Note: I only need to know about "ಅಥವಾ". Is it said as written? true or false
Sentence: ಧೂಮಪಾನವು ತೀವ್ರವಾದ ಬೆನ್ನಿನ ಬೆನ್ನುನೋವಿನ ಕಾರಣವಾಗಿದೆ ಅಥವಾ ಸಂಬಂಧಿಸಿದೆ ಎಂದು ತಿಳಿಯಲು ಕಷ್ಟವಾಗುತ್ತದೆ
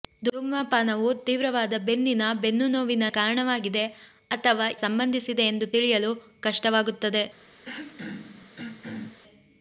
true